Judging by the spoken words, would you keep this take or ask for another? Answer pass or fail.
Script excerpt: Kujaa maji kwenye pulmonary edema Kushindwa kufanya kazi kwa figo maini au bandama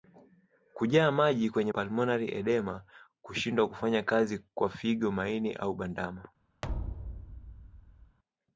pass